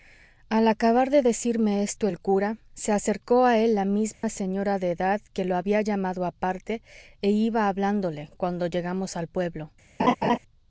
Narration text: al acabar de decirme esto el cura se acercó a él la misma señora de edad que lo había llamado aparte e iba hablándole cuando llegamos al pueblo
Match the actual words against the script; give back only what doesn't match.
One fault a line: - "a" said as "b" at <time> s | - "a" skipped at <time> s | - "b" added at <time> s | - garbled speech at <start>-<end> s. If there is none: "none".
none